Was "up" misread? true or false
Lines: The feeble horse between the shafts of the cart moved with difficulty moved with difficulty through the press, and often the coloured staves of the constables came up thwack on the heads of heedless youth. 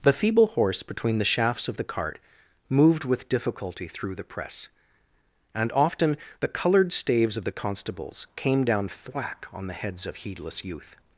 true